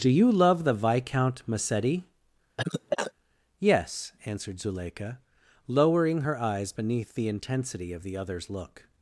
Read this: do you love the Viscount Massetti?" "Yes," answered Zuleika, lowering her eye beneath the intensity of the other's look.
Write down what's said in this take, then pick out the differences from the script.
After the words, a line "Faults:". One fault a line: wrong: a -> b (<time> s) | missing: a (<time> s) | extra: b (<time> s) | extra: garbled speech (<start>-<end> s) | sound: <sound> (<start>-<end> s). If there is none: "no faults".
do you love the Viscount Massetti?" "Yes," answered Zuleika, lowering her eyes beneath the intensity of the other's look.
Faults:
sound: cough (2.6-3.1 s)
wrong: eye -> eyes (6.4 s)